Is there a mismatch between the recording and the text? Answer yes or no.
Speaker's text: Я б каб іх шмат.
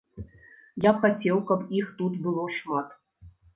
yes